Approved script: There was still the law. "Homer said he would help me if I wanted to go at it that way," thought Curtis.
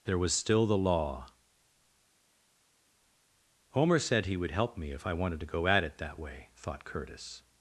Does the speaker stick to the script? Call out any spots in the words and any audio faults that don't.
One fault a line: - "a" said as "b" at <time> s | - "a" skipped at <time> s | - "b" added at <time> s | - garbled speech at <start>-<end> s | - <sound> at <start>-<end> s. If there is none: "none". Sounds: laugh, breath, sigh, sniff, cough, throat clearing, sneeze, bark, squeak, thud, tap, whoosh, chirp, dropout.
none